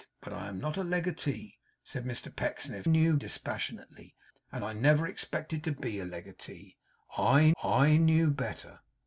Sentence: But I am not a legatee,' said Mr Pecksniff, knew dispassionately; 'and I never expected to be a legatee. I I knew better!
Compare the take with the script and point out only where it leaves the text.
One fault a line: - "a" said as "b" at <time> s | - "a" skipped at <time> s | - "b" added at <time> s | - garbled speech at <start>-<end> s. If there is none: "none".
none